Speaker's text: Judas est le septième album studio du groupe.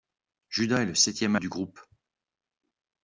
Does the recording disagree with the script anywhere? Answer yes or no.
yes